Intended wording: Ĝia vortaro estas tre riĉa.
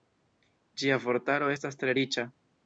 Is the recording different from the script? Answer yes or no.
no